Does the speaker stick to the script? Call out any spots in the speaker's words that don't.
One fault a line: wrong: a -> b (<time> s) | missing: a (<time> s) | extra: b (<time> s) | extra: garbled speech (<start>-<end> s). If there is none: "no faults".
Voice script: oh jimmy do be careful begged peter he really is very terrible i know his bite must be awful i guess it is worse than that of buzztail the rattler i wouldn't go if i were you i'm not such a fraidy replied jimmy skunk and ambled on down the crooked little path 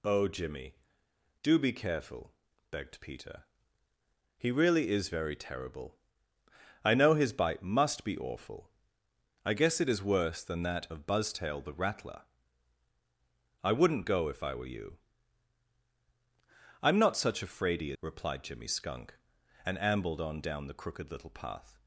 no faults